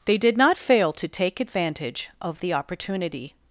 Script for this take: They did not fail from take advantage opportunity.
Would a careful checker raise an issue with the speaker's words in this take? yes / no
yes